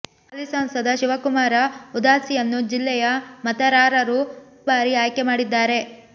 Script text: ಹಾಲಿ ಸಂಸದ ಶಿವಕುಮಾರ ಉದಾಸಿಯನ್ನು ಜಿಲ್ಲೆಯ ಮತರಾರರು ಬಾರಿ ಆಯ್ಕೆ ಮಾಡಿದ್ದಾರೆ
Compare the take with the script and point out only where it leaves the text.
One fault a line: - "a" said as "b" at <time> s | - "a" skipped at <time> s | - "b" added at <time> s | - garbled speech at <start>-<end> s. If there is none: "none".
none